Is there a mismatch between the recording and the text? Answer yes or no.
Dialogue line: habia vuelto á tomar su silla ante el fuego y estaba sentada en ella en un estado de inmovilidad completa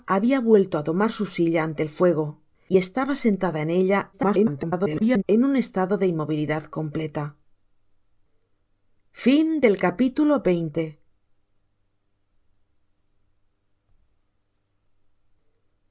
yes